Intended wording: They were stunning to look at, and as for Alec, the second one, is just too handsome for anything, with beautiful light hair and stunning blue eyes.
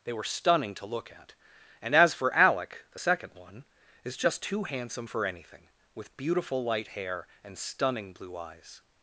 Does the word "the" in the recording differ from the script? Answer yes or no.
no